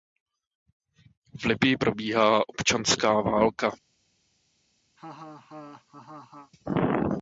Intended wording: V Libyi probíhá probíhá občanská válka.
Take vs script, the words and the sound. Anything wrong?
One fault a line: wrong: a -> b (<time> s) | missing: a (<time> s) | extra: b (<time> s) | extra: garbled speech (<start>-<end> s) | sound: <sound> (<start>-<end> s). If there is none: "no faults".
missing: probíhá (2.5 s)
sound: laugh (5.0-6.5 s)